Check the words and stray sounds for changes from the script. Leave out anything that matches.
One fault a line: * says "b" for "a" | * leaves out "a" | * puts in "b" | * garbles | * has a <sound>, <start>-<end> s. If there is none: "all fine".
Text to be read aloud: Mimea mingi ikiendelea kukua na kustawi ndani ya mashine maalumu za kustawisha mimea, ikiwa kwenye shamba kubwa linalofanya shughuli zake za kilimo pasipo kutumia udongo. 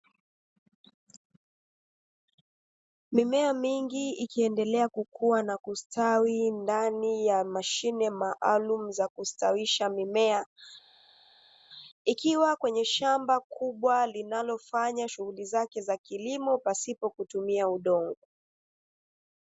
all fine